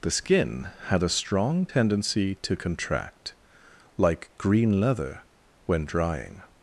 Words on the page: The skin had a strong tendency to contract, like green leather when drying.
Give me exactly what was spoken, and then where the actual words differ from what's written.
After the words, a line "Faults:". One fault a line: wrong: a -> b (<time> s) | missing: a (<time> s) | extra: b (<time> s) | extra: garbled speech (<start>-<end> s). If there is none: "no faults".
The skin had a strong tendency to contract, like green leather when drying.
Faults:
no faults